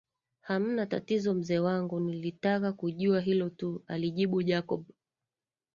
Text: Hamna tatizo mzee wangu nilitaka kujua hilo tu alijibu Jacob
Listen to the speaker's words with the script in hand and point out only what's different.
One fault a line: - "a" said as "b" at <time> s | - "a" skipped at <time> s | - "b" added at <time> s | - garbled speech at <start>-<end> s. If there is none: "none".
none